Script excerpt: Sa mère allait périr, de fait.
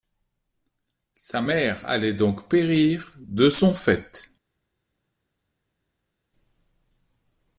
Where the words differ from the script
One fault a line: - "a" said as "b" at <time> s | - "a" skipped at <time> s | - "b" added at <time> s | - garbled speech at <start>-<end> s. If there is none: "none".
- "donc" added at 2.1 s
- "son" added at 3.5 s